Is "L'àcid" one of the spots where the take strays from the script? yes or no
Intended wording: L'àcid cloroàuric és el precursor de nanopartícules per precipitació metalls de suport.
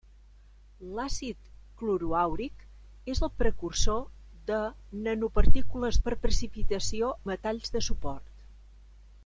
no